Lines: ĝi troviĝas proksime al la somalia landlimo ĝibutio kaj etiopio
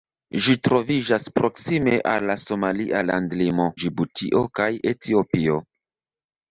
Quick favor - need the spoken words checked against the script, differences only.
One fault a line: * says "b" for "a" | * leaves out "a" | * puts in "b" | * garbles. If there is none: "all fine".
all fine